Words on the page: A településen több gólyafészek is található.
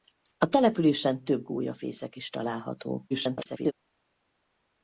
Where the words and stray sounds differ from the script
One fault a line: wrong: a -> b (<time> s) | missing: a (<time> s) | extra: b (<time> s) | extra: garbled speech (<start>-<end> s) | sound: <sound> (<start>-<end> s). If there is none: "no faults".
extra: garbled speech (3.1-3.7 s)